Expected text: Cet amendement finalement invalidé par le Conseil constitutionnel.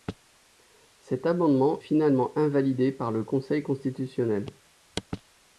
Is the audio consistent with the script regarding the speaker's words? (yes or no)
yes